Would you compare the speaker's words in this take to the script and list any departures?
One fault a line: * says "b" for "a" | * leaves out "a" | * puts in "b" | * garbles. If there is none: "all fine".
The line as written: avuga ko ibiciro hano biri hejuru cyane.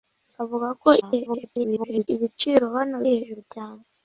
* garbles
* leaves out "biri"